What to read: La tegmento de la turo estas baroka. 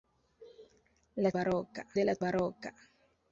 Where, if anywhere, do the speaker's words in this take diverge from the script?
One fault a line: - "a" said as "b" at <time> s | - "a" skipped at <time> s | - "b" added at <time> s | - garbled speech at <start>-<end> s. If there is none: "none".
- "tegmento" said as "baroka" at 1.4 s
- "turo estas" skipped at 2.2 s